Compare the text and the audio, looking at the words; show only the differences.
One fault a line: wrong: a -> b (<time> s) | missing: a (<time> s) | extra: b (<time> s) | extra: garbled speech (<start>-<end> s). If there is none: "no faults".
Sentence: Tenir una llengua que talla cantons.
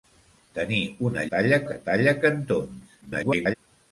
wrong: llengua -> talla (1.3 s)
extra: garbled speech (3.0-3.5 s)